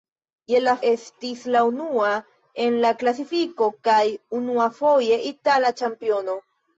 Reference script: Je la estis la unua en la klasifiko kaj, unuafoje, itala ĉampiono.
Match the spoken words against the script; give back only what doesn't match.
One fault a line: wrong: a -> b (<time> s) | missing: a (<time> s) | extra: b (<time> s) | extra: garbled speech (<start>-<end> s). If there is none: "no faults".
no faults